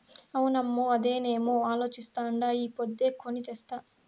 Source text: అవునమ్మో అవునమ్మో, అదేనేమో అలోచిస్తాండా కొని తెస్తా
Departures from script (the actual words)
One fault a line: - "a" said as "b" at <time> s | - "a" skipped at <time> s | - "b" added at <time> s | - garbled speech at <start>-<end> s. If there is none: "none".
- "అవునమ్మో" skipped at 0.9 s
- "ఈ పొద్దే" added at 2.6 s